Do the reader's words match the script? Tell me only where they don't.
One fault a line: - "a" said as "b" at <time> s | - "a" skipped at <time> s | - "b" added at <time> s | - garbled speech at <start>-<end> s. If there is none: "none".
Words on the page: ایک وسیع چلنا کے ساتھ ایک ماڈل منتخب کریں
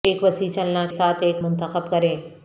- "کے" skipped at 0.8 s
- "ماڈل" skipped at 1.4 s